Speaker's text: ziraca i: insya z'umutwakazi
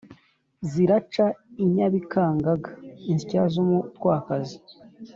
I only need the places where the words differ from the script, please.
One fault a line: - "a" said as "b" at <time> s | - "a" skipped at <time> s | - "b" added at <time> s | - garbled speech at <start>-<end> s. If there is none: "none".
- "nyabikangaga" added at 1.7 s